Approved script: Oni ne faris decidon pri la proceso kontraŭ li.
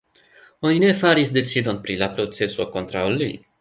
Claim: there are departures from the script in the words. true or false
false